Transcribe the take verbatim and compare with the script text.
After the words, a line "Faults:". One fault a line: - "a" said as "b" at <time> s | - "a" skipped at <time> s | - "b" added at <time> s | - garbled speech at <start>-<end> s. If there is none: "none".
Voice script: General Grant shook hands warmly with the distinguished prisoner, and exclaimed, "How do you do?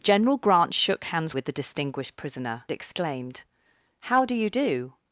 General Grant shook hands with the distinguished prisoner, exclaimed, "How do you do?
Faults:
- "warmly" skipped at 1.4 s
- "and" skipped at 2.6 s